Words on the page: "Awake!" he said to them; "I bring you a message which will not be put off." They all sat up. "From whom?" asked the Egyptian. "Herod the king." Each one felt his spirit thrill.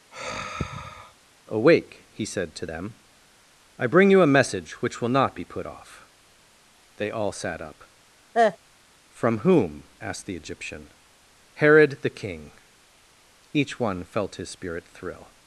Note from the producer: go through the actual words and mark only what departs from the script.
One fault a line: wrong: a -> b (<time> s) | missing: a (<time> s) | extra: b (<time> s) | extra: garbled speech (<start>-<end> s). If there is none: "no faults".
no faults